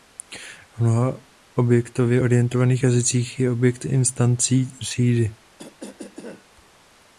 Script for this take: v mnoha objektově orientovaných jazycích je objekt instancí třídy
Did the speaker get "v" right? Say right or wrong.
right